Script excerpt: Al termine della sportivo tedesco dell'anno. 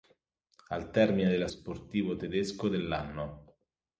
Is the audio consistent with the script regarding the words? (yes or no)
yes